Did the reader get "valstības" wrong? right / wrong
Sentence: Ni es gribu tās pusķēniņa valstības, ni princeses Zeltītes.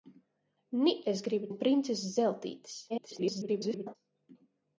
wrong